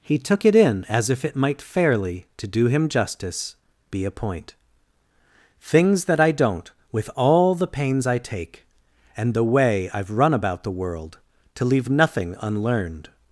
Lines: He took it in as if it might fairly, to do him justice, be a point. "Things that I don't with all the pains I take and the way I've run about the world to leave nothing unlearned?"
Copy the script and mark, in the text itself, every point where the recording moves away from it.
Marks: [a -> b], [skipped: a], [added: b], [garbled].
He took it in as if it might fairly, to do him justice, be a point. "Things that I don't with all the pains I take and the way I've run about the world to leave nothing unlearned?"